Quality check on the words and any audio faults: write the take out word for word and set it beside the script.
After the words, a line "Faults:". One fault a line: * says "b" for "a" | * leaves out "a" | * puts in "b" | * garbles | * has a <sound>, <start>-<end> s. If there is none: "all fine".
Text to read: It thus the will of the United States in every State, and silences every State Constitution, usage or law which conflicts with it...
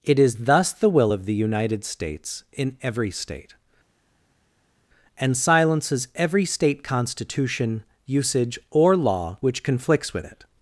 It is thus the will of the United States in every State, and silences every State Constitution, usage or law which conflicts with it...
Faults:
* puts in "is"